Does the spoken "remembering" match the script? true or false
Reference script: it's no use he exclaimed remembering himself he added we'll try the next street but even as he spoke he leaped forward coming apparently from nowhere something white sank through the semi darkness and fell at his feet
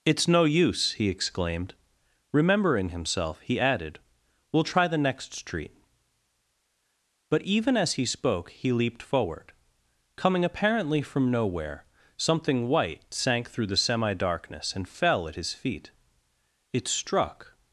true